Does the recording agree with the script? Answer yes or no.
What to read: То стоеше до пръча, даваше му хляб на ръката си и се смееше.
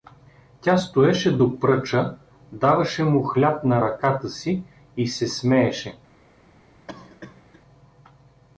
no